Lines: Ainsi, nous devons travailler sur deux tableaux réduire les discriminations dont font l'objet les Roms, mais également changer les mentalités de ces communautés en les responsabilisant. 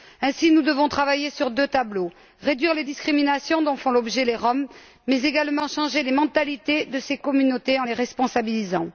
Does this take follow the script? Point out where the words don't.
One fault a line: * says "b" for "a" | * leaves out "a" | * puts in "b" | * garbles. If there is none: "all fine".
all fine